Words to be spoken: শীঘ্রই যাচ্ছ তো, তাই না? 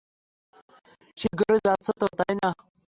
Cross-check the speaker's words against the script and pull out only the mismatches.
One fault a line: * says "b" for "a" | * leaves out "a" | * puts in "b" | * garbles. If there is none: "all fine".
all fine